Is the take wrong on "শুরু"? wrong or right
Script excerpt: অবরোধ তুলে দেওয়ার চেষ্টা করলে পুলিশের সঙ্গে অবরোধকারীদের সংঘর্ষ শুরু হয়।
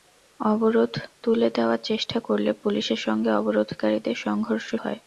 wrong